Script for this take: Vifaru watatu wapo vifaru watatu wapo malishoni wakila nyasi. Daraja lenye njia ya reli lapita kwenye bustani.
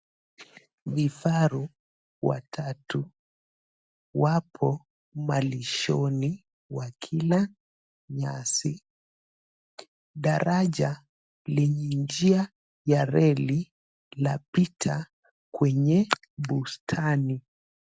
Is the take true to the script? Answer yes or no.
no